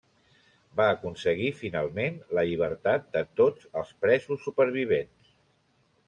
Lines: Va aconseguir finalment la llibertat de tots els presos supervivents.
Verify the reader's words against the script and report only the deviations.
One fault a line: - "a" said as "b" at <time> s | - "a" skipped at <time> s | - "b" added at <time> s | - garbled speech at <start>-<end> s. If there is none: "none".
none